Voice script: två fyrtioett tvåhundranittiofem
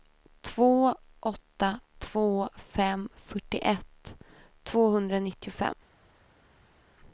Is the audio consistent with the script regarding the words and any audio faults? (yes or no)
no